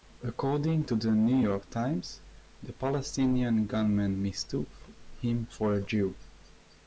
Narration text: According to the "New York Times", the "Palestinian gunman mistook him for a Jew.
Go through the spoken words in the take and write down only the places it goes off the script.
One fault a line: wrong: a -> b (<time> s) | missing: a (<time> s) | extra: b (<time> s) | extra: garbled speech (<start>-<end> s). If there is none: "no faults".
no faults